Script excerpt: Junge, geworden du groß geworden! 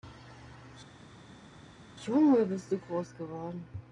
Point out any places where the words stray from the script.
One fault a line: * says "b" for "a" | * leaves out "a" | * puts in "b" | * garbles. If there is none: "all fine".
* says "bist" for "geworden"